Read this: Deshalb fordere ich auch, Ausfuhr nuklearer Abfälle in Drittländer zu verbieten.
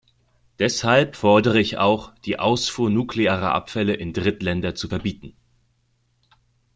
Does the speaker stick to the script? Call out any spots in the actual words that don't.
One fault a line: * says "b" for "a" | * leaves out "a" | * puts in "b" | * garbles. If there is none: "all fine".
* puts in "die"